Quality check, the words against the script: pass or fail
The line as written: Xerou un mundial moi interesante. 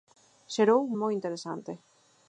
fail